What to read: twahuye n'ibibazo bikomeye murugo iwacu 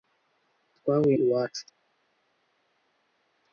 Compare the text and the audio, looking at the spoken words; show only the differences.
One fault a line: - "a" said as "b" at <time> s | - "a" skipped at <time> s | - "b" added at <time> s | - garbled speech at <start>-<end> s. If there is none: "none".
- "n'ibibazo bikomeye murugo" skipped at 1.1 s